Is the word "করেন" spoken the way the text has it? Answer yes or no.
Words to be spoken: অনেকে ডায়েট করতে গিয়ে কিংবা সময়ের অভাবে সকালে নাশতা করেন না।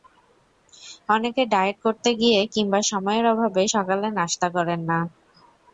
yes